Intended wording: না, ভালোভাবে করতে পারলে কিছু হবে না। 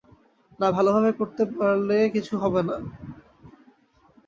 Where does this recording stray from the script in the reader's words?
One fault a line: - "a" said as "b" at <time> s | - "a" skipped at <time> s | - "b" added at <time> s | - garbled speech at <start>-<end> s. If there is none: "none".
none